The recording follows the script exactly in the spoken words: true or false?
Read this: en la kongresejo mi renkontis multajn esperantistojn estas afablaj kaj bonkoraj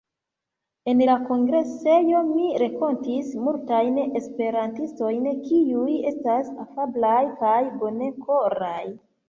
false